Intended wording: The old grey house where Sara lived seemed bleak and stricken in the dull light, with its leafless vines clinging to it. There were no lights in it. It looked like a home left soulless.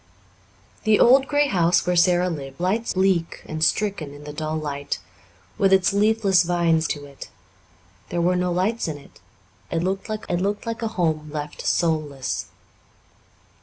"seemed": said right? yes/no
no